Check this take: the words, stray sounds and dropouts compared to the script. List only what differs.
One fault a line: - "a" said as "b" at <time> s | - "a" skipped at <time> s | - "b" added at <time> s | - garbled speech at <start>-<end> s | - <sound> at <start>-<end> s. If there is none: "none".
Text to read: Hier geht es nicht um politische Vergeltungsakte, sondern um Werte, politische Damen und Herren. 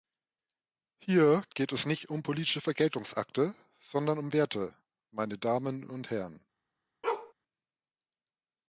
- "politische" said as "meine" at 5.1 s
- bark at 7.0-7.3 s